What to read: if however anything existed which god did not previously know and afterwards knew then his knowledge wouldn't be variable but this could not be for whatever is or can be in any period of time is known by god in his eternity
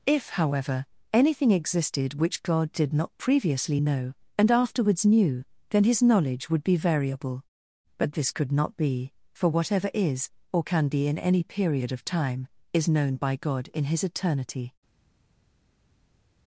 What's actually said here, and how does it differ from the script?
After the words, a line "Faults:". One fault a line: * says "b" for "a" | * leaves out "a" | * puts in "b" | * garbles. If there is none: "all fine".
if however anything existed which god did not previously know and afterwards knew then his knowledge would be variable but this could not be for whatever is or can be in any period of time is known by god in his eternity
Faults:
* says "would" for "wouldn't"